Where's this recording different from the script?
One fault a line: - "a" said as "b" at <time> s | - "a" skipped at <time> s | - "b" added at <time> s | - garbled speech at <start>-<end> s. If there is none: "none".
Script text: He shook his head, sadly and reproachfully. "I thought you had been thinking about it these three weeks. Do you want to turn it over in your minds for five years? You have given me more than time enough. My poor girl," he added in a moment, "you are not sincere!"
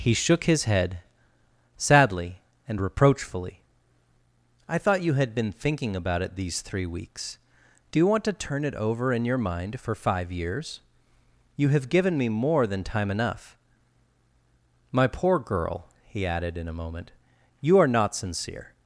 - "minds" said as "mind" at 9.4 s